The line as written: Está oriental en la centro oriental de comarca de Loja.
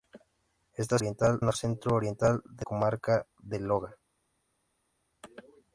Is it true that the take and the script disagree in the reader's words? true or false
false